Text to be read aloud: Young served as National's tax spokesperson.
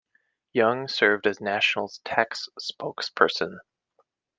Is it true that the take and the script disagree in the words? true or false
false